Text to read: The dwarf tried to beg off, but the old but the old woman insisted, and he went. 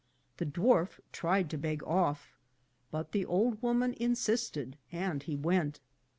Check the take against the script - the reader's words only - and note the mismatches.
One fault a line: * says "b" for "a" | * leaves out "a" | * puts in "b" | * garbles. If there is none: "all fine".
* leaves out "but the old"